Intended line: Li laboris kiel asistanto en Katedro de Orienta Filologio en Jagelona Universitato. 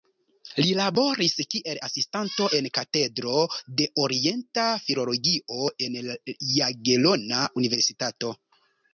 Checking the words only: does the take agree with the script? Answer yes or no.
yes